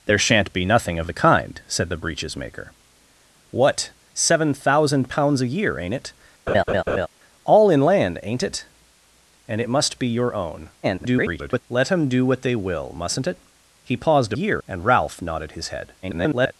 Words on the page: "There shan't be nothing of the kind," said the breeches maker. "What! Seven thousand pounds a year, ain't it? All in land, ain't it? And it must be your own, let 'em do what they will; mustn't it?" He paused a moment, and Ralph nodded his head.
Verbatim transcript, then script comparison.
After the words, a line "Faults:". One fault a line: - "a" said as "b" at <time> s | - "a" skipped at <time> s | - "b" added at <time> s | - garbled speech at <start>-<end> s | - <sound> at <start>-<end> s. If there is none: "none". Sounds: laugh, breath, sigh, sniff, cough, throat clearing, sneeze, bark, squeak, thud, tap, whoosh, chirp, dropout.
"There shan't be nothing of the kind," said the breeches maker. "What! Seven thousand pounds a year, ain't it? All in land, ain't it? And it must be your own, [garbled] let 'em do what they will; mustn't it?" He paused a year, and Ralph nodded his head. [garbled]
Faults:
- laugh at 6.5-7.1 s
- garbled speech at 10.8-11.6 s
- "moment" said as "year" at 14.3 s
- garbled speech at 16.0-16.5 s